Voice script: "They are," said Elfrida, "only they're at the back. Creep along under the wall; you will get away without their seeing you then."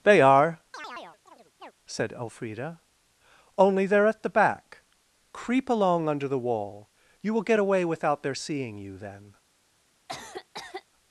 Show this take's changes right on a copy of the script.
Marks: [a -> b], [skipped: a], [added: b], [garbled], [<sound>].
"They are," [chirp] said Elfrida, "only they're at the back. Creep along under the wall; you will get away without their seeing you then." [cough]